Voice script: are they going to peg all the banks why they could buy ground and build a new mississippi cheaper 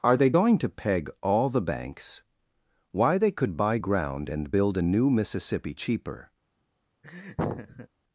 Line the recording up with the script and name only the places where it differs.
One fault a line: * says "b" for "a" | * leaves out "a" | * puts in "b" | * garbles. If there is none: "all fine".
all fine